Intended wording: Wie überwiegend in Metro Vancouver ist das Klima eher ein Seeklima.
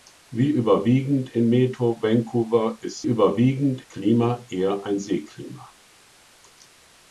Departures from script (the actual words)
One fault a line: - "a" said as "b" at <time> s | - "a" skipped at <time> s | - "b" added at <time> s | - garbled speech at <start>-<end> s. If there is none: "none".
- "das" said as "überwiegend" at 3.0 s